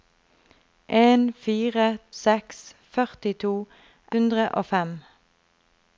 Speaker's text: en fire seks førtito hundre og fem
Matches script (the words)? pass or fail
pass